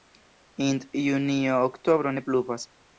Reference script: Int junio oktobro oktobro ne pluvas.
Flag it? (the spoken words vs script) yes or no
yes